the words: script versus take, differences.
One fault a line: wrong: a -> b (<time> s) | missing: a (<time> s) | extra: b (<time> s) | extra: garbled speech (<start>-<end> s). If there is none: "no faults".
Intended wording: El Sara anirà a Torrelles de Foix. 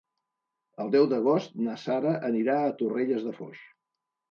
extra: deu d'agost na (0.9 s)